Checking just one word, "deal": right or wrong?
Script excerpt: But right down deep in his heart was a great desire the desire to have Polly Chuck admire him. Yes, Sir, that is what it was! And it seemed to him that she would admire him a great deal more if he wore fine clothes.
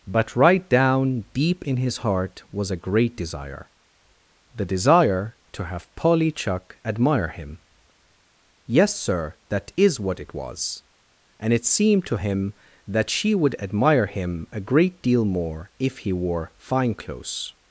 right